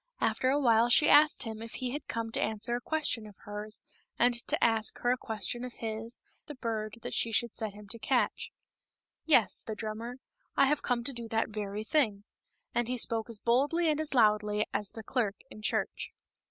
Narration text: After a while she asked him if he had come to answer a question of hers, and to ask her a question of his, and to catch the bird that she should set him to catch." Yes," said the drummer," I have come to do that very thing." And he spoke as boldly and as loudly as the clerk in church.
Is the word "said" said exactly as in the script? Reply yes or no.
no